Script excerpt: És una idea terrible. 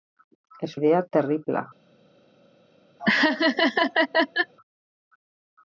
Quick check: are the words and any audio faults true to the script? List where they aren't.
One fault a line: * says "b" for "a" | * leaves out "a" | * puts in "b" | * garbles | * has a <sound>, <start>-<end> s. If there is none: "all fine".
* leaves out "una"
* has a laugh, 3.0-4.5 s